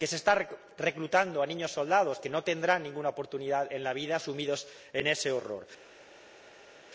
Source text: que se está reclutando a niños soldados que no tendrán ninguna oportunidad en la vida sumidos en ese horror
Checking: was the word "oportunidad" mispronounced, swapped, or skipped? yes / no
no